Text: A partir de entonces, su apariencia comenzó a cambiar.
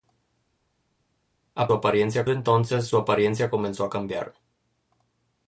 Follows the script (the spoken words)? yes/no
no